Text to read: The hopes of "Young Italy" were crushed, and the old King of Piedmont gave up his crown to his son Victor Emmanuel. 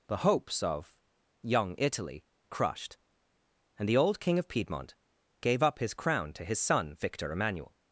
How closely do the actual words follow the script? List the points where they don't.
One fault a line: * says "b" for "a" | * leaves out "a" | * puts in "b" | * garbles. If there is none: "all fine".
* leaves out "were"